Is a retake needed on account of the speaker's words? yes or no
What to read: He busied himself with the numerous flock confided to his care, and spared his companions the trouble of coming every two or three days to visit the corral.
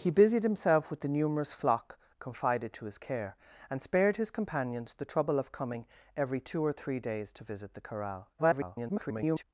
yes